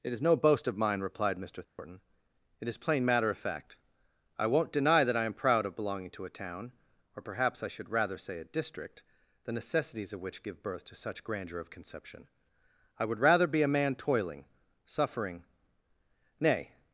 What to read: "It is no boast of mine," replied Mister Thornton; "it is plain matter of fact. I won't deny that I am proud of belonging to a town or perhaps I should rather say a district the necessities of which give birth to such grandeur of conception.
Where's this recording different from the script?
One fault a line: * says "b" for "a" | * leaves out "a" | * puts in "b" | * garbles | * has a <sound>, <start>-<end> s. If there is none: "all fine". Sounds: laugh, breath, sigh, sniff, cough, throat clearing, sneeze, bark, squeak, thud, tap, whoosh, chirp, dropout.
* has a dropout, 1.6-1.8 s
* puts in "I would rather be a man toiling suffering nay"